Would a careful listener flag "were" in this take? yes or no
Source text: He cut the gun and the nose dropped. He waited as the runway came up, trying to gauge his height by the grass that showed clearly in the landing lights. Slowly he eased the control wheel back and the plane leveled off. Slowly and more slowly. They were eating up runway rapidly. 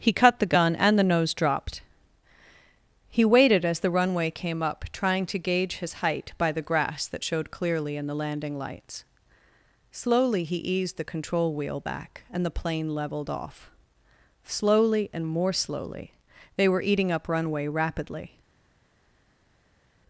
no